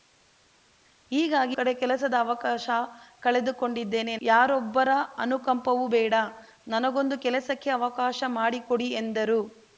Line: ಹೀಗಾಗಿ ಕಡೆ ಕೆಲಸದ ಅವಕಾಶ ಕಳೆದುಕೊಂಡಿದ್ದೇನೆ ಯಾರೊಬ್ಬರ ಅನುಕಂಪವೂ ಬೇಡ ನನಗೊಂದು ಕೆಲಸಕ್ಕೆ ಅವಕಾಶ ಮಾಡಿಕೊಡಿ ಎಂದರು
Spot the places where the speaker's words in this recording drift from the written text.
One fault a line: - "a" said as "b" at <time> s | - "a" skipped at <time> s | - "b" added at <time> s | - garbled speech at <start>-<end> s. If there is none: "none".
none